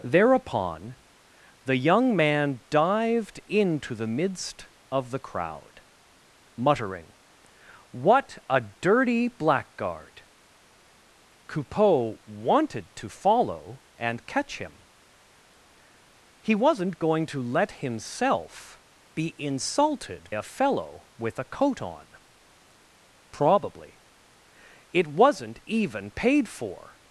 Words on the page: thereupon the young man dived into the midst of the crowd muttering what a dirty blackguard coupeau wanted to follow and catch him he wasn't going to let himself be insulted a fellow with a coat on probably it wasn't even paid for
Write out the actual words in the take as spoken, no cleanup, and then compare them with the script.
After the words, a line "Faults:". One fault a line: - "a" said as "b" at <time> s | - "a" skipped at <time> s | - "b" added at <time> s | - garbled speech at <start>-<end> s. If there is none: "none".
thereupon the young man dived into the midst of the crowd muttering what a dirty blackguard coupeau wanted to follow and catch him he wasn't going to let himself be insulted a fellow with a coat on probably it wasn't even paid for
Faults:
none